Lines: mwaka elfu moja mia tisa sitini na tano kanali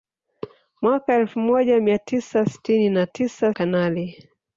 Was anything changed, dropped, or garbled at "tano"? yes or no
yes